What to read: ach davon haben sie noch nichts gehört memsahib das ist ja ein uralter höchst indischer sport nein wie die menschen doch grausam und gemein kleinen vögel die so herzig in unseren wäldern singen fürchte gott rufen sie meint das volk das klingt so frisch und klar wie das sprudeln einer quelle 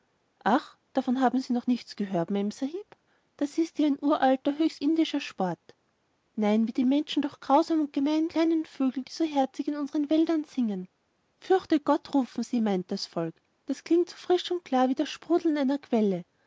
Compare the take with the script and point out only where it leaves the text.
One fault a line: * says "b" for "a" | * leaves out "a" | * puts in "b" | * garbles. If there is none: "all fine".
all fine